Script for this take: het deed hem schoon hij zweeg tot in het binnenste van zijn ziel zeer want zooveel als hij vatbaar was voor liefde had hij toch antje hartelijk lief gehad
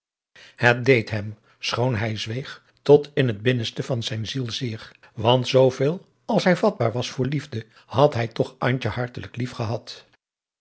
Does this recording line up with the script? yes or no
yes